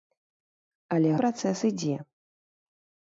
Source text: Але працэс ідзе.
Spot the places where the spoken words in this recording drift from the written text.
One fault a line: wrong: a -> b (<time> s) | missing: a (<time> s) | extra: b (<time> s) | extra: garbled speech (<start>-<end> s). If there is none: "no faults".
no faults